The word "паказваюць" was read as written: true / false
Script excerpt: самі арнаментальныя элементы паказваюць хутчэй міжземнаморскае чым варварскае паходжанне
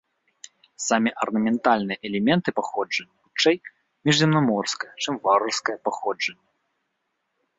false